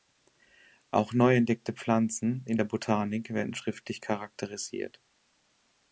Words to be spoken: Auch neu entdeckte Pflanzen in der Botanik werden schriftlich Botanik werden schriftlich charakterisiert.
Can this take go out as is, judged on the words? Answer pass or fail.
fail